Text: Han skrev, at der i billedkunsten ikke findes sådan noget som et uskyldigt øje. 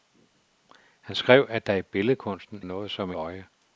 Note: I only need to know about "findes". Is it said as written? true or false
false